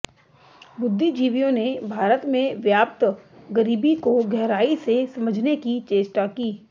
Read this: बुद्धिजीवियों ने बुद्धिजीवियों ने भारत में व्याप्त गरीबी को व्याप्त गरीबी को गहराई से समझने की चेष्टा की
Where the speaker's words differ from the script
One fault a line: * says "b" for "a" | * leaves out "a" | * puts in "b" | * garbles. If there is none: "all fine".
* leaves out "बुद्धिजीवियों ने"
* leaves out "व्याप्त गरीबी को"